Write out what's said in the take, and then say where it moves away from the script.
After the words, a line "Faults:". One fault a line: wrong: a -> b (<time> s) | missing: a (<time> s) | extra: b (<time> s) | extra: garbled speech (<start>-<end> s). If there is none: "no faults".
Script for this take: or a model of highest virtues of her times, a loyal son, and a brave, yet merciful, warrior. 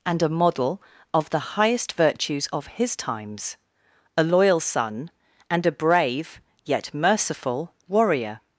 and a model of the highest virtues of his times, a loyal son, and a brave, yet merciful, warrior.
Faults:
wrong: or -> and (0.1 s)
extra: the (1.3 s)
wrong: her -> his (2.7 s)